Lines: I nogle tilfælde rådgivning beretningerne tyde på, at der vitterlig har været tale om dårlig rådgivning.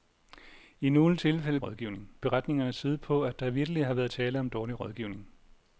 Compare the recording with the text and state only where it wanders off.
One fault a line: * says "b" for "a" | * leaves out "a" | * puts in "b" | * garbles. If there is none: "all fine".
all fine